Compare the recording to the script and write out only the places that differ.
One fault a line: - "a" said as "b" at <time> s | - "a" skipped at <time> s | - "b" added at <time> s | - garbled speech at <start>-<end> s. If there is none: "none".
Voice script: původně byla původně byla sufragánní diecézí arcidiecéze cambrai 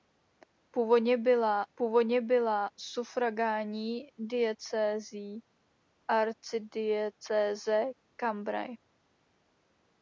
none